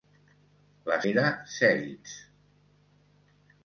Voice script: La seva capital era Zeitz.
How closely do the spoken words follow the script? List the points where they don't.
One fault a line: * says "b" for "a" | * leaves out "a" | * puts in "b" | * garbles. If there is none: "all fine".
* leaves out "seva capital"